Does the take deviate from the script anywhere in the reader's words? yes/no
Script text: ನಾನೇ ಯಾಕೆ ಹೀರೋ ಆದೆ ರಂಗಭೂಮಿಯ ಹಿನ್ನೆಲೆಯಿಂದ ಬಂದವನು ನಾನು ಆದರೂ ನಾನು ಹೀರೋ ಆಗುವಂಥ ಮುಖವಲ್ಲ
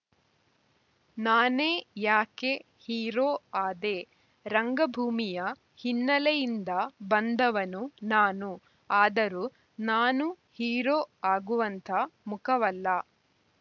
no